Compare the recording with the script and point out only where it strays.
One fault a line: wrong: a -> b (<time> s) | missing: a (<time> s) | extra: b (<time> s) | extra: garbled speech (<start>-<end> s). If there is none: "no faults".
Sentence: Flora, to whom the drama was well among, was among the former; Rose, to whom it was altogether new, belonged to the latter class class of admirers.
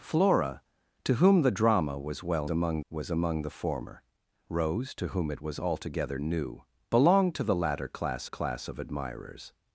no faults